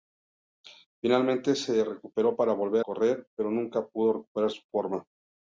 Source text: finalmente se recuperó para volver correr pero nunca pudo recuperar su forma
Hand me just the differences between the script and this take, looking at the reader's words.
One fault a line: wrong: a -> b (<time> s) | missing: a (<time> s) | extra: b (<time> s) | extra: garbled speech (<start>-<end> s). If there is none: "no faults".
no faults